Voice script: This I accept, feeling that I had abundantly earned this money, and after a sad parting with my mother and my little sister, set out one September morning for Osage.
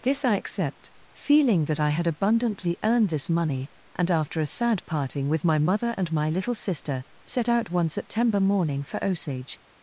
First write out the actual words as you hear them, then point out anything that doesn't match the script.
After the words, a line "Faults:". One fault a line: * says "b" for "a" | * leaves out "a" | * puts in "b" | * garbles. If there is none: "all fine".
This I accept, feeling that I had abundantly earned this money, and after a sad parting with my mother and my little sister, set out one September morning for Osage.
Faults:
all fine